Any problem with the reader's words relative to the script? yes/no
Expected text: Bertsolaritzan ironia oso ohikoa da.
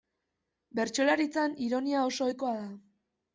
no